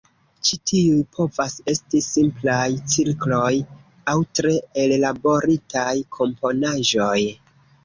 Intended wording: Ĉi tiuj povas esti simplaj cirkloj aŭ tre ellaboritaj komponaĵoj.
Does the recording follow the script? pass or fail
pass